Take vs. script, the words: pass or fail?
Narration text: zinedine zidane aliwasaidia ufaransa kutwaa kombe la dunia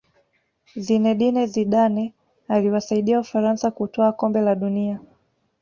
pass